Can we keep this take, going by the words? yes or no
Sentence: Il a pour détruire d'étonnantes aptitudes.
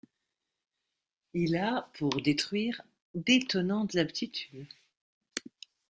yes